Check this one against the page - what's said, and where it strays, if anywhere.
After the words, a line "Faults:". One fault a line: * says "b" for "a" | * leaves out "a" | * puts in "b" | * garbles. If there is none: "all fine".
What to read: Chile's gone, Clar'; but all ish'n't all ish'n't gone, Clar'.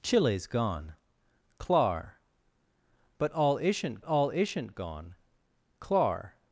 Chile's gone, Clar'; but all ish'n't all ish'n't gone, Clar'.
Faults:
all fine